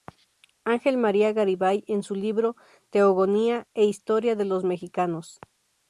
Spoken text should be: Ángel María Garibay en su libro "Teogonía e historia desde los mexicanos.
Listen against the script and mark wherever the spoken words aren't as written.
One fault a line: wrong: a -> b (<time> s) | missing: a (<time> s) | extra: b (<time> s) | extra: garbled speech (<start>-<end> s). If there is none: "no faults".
wrong: desde -> de (4.3 s)